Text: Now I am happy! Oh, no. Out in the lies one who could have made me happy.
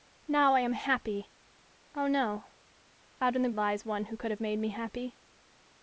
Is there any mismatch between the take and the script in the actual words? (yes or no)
no